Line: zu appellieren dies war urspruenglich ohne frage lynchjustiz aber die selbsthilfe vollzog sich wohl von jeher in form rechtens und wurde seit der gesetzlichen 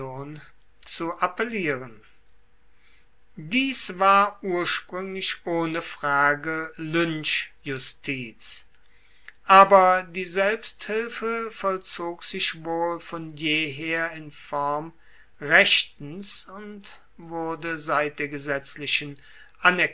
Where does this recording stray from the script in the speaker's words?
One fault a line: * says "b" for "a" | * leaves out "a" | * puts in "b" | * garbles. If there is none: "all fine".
all fine